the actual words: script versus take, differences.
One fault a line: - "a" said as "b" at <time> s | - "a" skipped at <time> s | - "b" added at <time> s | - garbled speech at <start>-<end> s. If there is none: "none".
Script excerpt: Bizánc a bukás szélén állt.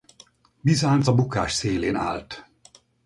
none